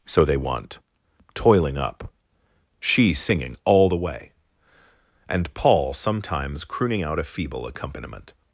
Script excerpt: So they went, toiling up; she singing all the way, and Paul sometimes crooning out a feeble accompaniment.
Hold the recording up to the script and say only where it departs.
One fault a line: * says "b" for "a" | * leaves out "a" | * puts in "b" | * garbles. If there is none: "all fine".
* says "want" for "went"